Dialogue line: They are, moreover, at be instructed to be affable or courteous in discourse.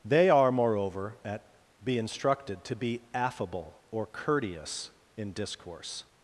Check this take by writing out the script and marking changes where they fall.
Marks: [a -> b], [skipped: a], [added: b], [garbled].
They are, moreover, at be instructed to be affable or courteous in discourse.